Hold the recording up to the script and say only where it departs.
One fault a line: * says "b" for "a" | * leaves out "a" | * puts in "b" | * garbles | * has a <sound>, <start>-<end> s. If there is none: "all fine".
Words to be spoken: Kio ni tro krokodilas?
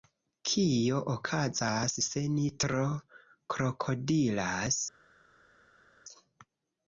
* puts in "okazas se"